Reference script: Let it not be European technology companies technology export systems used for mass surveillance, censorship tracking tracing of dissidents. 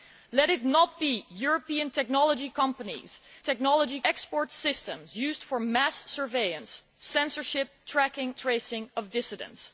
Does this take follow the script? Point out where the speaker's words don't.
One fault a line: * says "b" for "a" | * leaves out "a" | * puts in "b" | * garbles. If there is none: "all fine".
all fine